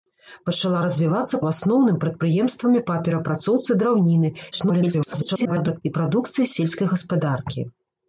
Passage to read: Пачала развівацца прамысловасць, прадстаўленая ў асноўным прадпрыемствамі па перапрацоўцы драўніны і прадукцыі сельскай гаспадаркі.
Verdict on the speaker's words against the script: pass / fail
fail